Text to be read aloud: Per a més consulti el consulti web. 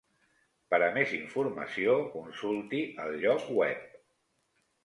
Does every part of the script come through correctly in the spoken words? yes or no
no